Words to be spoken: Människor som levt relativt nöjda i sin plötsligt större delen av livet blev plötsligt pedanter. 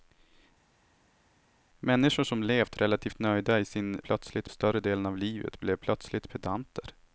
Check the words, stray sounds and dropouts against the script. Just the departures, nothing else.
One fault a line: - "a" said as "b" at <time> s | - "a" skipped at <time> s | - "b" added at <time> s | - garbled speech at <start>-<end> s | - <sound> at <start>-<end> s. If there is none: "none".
none